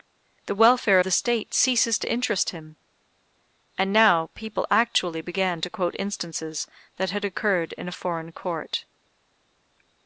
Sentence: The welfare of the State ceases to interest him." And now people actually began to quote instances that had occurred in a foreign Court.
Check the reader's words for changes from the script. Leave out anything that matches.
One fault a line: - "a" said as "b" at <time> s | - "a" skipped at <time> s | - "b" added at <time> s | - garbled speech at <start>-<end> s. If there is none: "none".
- "of" skipped at 1.0 s